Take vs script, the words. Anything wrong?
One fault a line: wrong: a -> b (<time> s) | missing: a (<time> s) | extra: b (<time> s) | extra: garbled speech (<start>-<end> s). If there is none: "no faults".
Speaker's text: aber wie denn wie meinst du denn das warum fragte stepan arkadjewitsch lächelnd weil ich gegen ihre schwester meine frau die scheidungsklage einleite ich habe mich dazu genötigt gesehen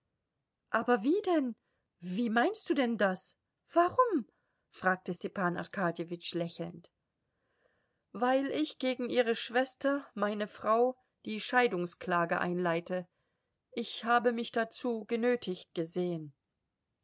no faults